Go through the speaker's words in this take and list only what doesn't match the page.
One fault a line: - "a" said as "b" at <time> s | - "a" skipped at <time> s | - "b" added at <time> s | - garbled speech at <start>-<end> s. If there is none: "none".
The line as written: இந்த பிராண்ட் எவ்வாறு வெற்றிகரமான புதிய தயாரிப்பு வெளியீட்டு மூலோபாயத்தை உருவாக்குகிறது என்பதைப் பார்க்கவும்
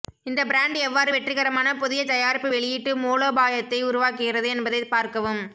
none